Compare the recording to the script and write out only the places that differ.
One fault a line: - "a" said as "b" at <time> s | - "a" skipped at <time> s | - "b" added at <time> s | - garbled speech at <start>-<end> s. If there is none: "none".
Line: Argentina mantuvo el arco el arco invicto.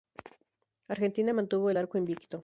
- "el arco" skipped at 2.0 s